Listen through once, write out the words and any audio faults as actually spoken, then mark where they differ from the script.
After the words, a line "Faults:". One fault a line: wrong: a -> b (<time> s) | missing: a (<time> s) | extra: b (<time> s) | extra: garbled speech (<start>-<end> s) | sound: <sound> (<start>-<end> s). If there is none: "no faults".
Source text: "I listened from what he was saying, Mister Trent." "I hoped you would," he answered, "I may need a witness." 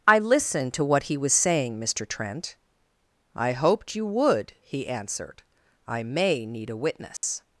"I listened to what he was saying, Mister Trent." "I hoped you would," he answered, "I may need a witness."
Faults:
wrong: from -> to (0.7 s)
sound: dropout (7.2-7.2 s)